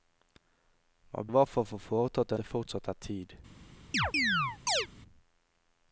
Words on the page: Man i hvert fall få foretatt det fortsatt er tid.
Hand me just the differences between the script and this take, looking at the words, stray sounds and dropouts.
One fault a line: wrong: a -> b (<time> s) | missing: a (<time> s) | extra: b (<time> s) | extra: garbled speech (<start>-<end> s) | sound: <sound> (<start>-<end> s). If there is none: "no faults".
sound: chirp (3.9-4.9 s)